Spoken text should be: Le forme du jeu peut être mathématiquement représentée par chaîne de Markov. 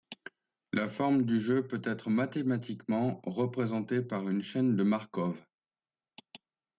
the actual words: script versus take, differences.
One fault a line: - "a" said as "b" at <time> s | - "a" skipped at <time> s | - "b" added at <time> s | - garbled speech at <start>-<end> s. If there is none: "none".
- "Le" said as "La" at 0.7 s
- "une" added at 4.3 s